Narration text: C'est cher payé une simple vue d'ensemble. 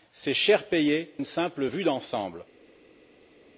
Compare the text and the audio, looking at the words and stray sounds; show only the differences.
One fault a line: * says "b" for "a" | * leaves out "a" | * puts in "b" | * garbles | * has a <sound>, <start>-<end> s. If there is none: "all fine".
all fine